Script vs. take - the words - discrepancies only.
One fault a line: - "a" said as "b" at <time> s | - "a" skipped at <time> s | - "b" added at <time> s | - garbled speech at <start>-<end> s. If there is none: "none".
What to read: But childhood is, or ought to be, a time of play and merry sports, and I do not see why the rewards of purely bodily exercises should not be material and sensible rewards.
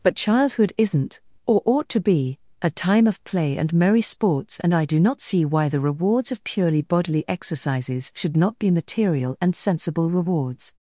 - "is" said as "isn't" at 0.8 s